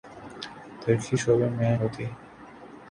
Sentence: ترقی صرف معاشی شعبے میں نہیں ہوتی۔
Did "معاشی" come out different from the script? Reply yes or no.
yes